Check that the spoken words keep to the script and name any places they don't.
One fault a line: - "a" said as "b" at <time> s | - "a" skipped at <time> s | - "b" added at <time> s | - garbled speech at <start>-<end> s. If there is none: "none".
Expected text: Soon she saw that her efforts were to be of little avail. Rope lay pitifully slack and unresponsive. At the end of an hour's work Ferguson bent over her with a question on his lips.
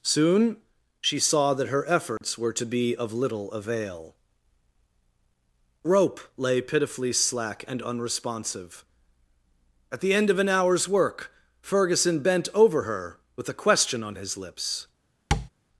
none